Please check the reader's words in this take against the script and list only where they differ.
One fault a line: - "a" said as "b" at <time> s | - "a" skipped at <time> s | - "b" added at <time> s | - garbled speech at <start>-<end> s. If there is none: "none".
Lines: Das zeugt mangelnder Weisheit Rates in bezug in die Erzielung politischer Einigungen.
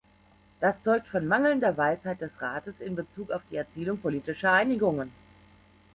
- "von" added at 1.1 s
- "des" added at 2.2 s
- "in" said as "auf" at 3.3 s